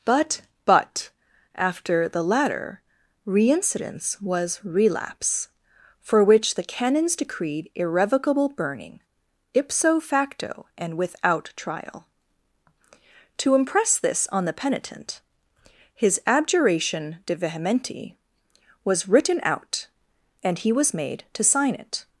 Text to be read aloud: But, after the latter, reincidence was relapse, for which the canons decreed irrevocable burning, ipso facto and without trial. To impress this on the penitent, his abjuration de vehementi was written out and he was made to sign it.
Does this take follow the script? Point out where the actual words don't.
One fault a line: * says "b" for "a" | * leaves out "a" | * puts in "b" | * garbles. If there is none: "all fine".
* puts in "but"